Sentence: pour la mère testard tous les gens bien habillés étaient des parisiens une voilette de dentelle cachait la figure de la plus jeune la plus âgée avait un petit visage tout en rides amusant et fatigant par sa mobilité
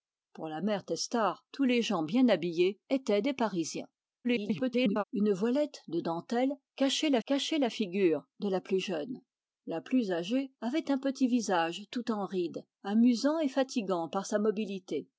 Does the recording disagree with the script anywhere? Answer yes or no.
yes